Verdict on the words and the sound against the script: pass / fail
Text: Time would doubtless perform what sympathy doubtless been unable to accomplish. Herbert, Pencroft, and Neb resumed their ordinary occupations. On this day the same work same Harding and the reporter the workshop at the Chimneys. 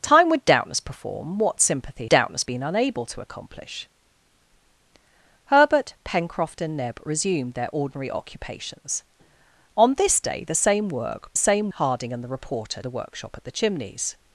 pass